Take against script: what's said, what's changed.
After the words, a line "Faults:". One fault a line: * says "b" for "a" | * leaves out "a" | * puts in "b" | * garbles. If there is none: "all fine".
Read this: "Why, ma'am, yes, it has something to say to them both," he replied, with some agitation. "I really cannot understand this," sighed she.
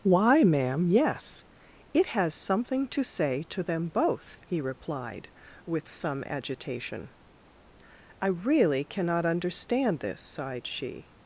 "Why, ma'am, yes, it has something to say to them both," he replied, with some agitation. "I really cannot understand this," sighed she.
Faults:
all fine